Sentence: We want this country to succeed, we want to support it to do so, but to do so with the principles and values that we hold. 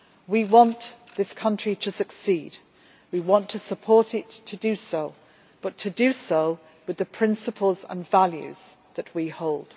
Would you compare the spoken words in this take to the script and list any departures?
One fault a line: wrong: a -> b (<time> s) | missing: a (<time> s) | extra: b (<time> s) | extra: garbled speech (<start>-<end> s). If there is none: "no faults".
no faults